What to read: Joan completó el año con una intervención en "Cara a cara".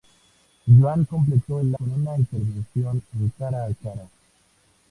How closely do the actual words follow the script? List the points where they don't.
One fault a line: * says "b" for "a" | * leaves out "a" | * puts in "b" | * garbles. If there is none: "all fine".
* leaves out "año"